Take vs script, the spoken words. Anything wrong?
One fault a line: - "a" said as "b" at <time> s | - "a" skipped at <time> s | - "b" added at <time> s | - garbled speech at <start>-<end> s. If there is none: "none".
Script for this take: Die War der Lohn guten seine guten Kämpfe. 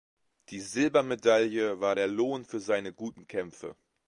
- "Silbermedaille" added at 0.6 s
- "guten" said as "für" at 2.4 s